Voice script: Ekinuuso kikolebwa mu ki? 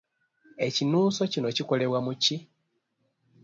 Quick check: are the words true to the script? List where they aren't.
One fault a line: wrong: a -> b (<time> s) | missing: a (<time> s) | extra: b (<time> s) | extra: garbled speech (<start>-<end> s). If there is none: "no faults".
extra: kino (1.3 s)